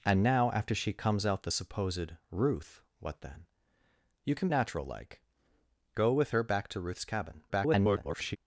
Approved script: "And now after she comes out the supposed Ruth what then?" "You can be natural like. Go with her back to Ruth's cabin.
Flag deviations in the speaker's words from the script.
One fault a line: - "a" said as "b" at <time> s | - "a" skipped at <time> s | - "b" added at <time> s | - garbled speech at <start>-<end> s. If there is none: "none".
- "be" skipped at 4.5 s
- garbled speech at 7.5-8.4 s